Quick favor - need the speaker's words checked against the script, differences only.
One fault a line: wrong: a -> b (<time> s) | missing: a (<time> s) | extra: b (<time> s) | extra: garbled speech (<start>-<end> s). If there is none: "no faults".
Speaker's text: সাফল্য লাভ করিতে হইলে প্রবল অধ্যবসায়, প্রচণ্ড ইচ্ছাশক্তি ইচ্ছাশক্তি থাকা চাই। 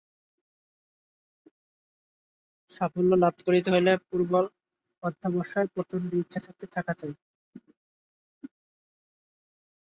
missing: ইচ্ছাশক্তি (6.7 s)